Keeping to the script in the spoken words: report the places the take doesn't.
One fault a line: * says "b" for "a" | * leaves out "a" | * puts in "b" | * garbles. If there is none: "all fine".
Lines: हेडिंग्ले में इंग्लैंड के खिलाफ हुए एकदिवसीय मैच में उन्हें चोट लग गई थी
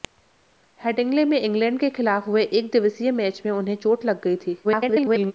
* garbles